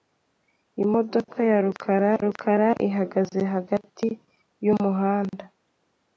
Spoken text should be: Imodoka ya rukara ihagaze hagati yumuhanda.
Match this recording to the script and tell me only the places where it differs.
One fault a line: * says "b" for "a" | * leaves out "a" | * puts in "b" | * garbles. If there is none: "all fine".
* puts in "rukara"